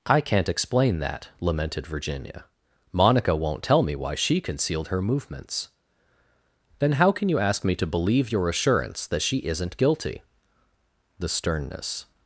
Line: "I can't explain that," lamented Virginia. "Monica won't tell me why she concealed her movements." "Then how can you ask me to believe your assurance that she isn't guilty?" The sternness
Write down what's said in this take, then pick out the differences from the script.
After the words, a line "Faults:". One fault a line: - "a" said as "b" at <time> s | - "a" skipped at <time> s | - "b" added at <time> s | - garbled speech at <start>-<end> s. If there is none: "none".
"I can't explain that," lamented Virginia. "Monica won't tell me why she concealed her movements." "Then how can you ask me to believe your assurance that she isn't guilty?" The sternness
Faults:
none